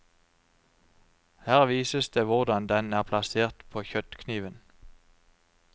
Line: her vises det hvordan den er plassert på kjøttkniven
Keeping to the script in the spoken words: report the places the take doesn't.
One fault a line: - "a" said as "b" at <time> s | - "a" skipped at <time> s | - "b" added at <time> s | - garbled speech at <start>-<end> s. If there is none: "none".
none